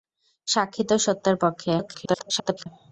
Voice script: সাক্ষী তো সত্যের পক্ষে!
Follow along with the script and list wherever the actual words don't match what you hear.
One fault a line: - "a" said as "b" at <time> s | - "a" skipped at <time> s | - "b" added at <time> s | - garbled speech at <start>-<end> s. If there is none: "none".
- garbled speech at 1.8-2.7 s